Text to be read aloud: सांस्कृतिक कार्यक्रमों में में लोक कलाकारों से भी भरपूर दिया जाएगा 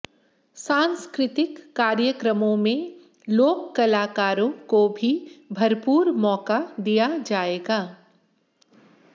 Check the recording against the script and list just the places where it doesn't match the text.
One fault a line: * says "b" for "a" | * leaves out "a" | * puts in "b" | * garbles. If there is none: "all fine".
* leaves out "में"
* says "को" for "से"
* puts in "मौका"